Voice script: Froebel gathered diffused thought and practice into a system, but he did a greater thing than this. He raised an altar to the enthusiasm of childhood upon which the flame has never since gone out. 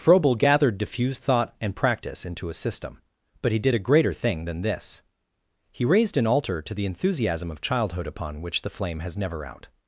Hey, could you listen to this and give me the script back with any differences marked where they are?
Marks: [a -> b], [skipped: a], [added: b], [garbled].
Froebel gathered diffused thought and practice into a system, but he did a greater thing than this. He raised an altar to the enthusiasm of childhood upon which the flame has never [skipped: since gone] out.